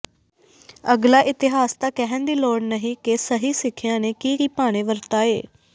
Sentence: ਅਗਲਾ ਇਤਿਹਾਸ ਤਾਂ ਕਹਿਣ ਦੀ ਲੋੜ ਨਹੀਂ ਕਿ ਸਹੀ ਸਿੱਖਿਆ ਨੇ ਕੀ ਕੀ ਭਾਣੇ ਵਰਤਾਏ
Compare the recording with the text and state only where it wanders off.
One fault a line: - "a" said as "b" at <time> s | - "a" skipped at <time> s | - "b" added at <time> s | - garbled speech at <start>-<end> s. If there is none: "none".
none